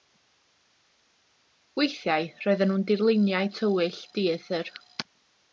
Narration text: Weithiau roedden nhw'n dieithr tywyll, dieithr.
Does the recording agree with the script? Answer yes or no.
no